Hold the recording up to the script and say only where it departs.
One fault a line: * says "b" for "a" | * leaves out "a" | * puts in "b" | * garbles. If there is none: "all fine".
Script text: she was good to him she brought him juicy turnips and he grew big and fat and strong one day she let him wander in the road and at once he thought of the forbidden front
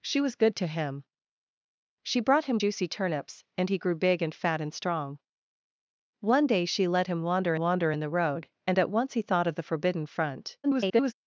* puts in "wander"
* garbles